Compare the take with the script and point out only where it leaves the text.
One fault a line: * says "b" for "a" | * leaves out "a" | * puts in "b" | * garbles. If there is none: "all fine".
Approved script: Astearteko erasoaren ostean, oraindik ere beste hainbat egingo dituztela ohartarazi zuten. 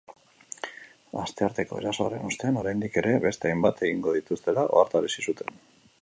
all fine